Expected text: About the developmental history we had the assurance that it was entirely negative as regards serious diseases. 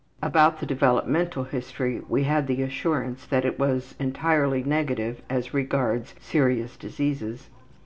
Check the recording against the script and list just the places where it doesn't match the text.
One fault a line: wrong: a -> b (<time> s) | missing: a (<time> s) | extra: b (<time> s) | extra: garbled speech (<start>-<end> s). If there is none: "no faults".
no faults